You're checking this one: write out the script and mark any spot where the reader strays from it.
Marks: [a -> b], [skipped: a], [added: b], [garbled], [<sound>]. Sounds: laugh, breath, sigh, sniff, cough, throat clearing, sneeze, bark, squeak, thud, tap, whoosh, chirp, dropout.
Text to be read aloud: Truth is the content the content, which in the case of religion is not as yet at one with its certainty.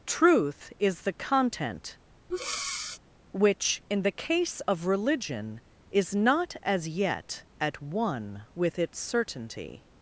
Truth is the content [skipped: the content,] [breath] which in the case of religion is not as yet at one with its certainty.